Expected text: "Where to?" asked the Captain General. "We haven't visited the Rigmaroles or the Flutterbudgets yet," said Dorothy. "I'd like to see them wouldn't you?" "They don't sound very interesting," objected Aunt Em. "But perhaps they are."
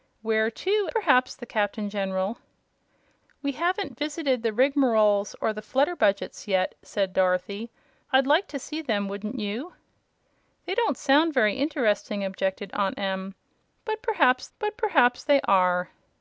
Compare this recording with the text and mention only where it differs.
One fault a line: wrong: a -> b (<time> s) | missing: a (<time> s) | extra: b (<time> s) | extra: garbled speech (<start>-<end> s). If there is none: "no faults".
wrong: asked -> perhaps (0.9 s)
extra: but perhaps (14.6 s)